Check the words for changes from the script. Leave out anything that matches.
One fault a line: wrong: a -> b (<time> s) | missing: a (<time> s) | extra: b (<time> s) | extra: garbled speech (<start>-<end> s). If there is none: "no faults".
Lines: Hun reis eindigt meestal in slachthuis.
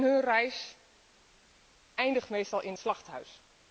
no faults